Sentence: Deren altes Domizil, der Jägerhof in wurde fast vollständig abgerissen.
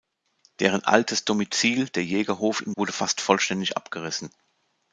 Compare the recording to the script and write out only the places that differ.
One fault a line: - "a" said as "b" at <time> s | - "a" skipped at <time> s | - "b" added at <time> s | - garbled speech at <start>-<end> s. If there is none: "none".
none